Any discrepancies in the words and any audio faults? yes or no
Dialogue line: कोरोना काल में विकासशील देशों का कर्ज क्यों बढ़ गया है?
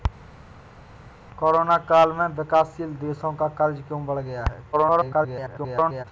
yes